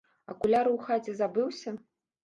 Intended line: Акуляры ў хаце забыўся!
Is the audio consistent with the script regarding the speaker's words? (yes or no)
yes